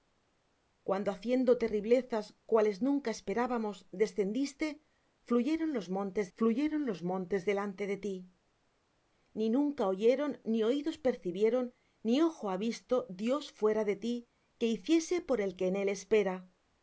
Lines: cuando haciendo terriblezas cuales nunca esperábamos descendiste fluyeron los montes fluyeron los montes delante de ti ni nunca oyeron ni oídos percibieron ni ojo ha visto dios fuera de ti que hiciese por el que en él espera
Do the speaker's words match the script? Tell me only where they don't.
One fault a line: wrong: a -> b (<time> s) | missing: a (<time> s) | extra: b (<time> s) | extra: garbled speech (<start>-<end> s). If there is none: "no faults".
no faults